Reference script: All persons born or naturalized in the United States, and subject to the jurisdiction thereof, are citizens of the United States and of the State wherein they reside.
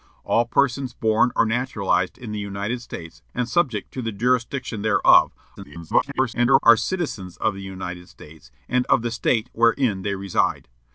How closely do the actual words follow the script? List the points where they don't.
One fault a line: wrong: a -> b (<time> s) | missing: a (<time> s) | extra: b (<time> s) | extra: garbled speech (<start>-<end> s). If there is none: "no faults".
extra: garbled speech (5.6-6.6 s)